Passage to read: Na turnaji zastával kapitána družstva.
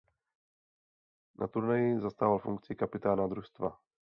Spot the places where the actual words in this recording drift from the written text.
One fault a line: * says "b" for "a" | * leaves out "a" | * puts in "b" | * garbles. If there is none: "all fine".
* puts in "funkci"